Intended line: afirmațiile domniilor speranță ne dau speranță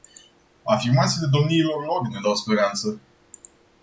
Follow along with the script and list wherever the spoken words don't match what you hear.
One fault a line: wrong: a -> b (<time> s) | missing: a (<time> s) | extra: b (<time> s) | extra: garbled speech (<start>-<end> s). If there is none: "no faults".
wrong: speranță -> lor (1.9 s)